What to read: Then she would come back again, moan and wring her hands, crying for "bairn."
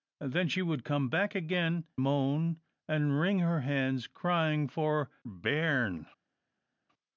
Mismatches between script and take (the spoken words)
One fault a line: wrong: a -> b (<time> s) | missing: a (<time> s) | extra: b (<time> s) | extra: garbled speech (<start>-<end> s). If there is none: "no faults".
no faults